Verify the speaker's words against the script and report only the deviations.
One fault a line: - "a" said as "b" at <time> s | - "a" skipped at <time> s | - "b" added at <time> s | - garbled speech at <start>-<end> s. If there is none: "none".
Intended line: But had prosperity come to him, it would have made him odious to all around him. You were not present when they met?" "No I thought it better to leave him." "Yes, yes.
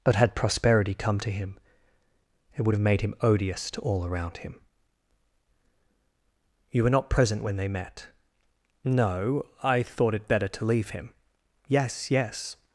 none